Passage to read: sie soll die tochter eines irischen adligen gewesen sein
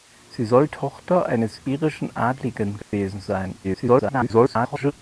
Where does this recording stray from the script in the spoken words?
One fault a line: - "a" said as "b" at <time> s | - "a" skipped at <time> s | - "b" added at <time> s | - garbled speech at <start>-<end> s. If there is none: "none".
- "die" skipped at 0.7 s
- garbled speech at 3.6-4.9 s